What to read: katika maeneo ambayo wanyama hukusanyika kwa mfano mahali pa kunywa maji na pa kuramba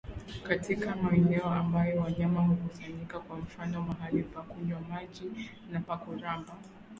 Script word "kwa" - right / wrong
right